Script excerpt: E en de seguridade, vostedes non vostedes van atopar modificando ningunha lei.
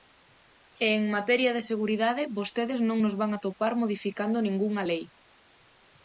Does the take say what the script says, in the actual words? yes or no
no